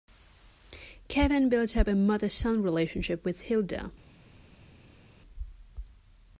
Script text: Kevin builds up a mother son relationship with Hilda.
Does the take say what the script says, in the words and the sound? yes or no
yes